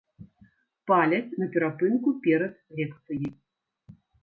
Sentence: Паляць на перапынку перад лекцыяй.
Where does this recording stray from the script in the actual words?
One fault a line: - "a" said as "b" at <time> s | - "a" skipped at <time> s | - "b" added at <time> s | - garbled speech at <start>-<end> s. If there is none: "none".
none